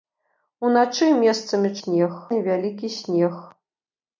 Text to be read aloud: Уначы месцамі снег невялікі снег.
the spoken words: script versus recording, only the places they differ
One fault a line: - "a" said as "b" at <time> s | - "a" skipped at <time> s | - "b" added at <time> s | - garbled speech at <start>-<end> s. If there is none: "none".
none